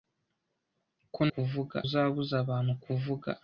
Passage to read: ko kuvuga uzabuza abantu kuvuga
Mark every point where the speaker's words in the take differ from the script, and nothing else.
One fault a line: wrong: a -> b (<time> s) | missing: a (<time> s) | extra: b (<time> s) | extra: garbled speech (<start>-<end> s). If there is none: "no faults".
no faults